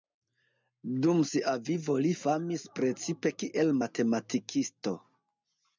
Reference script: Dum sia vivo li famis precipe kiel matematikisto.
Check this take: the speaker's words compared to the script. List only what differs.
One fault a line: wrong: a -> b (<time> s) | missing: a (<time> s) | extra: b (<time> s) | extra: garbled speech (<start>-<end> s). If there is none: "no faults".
no faults